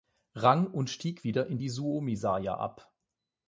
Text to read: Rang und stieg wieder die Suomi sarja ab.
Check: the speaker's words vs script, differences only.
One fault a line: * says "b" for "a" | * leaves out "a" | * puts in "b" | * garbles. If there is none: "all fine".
* puts in "in"